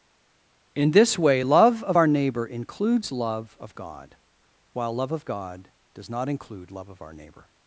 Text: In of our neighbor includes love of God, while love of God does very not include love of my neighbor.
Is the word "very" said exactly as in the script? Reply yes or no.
no